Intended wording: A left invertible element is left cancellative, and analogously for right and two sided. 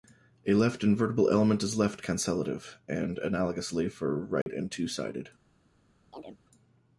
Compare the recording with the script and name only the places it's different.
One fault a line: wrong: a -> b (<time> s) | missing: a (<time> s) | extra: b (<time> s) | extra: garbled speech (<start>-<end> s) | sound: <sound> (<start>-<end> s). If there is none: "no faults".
sound: dropout (4.4-4.5 s)
sound: chirp (6.1-6.4 s)